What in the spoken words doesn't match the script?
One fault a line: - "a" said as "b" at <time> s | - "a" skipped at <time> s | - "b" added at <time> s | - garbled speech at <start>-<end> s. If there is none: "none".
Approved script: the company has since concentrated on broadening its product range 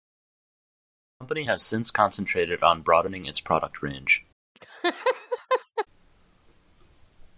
none